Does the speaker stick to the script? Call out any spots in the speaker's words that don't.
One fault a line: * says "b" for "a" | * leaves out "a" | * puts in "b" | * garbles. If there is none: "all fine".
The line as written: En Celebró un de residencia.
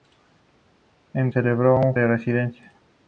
all fine